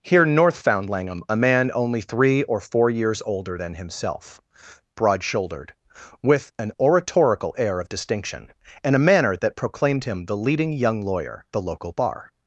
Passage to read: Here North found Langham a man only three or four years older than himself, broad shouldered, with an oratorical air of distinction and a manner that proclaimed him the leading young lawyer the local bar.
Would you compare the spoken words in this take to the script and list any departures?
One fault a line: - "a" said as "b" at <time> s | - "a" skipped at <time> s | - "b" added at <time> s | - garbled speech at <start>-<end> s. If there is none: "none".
none